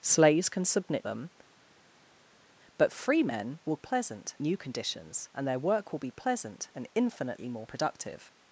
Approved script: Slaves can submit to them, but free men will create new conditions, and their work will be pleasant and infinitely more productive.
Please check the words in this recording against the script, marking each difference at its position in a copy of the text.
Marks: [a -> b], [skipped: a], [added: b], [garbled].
Slaves can submit [skipped: to] them, but free men will [create -> pleasant] new conditions, and their work will be pleasant and infinitely more productive.